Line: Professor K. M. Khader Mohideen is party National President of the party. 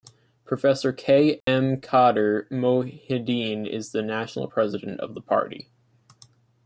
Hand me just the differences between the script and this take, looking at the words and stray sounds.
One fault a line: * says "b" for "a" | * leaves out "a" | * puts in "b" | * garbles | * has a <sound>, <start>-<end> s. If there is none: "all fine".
* has a dropout, 1.4-1.5 s
* says "the" for "party"